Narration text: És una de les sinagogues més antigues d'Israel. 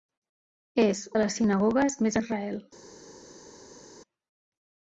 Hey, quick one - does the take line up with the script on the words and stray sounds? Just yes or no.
no